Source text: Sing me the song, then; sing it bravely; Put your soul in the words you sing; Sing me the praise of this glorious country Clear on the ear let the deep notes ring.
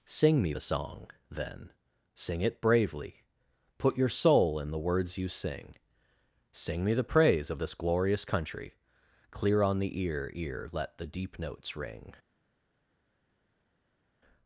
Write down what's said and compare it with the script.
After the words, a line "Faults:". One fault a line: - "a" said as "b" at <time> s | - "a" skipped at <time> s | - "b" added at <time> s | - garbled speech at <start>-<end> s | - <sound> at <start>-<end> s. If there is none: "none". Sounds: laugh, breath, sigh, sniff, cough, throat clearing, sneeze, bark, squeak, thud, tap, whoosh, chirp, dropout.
Sing me the song, then; sing it bravely; Put your soul in the words you sing; Sing me the praise of this glorious country Clear on the ear ear let the deep notes ring.
Faults:
- "ear" added at 10.3 s